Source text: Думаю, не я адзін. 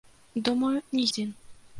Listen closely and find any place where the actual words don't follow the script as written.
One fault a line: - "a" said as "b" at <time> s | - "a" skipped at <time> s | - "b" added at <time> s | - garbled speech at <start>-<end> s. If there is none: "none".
- "я" skipped at 1.1 s